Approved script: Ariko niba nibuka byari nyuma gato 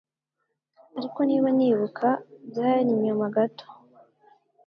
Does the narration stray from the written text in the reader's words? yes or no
no